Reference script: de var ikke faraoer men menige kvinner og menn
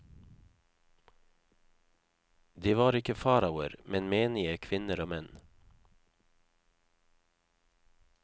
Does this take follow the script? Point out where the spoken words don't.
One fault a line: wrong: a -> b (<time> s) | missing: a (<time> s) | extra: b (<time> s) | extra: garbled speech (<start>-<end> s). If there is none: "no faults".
no faults